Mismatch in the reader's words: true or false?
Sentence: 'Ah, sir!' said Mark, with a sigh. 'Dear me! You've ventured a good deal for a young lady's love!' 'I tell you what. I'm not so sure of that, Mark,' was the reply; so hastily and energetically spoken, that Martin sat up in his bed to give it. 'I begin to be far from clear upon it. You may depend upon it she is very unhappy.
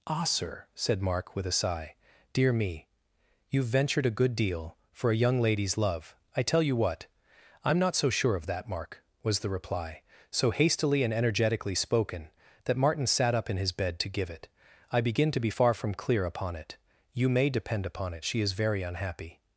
false